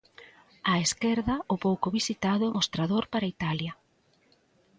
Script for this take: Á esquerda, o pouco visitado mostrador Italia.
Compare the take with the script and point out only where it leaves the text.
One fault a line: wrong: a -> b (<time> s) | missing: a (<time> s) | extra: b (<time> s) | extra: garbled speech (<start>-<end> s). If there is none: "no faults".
extra: para (3.1 s)